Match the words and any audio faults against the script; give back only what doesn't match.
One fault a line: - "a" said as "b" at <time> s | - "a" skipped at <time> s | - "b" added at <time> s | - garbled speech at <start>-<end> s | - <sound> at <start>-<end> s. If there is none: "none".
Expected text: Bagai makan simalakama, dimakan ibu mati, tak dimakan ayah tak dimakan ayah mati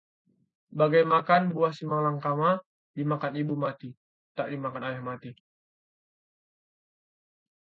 - "buah" added at 1.5 s
- "tak dimakan ayah" skipped at 5.0 s